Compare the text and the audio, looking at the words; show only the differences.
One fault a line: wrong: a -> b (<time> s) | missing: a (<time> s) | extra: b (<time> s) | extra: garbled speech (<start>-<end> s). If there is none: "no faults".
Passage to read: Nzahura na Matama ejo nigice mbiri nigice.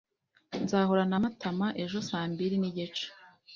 wrong: nigice -> saa (2.1 s)